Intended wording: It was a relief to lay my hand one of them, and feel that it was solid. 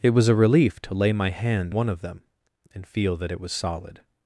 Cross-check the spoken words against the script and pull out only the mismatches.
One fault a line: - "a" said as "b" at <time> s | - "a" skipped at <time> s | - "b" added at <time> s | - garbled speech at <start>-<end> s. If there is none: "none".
none